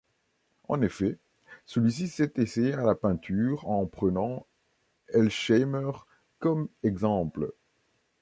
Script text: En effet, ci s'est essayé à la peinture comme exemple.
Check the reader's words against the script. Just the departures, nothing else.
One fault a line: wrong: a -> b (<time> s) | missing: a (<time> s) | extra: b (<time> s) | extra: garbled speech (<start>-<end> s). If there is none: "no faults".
extra: celui (1.7 s)
extra: en prenant Elsheimer (3.7 s)